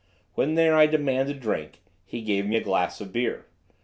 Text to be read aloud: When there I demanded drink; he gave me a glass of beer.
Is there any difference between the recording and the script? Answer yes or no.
no